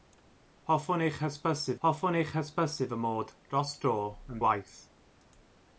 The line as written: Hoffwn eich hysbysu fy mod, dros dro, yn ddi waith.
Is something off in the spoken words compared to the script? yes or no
yes